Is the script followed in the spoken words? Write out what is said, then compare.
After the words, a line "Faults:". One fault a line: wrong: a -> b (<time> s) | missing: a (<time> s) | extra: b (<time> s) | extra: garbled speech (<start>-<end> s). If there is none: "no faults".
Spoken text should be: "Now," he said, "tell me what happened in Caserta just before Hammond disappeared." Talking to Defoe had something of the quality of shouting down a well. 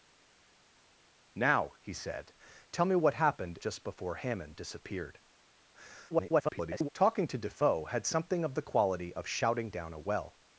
"Now," he said, "tell me what happened just before Hammond disappeared." [garbled] Talking to Defoe had something of the quality of shouting down a well.
Faults:
missing: in Caserta (3.6 s)
extra: garbled speech (6.1-6.9 s)